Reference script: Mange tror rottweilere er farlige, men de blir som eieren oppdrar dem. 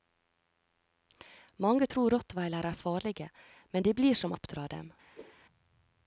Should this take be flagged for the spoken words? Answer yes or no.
yes